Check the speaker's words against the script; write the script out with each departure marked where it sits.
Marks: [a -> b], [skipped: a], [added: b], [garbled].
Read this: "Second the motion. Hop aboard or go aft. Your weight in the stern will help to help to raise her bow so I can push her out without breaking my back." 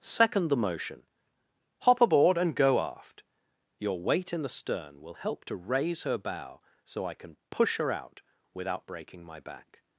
"Second the motion. Hop aboard [or -> and] go aft. Your weight in the stern will help to [skipped: help to] raise her bow so I can push her out without breaking my back."